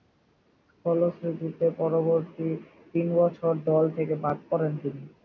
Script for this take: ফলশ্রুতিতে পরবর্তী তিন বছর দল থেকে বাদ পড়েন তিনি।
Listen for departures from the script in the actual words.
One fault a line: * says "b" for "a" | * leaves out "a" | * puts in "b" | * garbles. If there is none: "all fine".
all fine